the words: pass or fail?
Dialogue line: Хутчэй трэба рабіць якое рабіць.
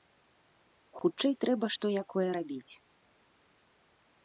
fail